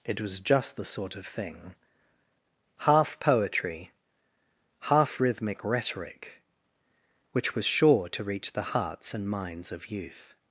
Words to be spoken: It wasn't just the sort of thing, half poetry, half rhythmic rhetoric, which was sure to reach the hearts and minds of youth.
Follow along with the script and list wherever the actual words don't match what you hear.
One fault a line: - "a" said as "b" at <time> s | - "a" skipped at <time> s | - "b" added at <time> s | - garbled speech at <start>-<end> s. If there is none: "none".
- "wasn't" said as "was" at 0.2 s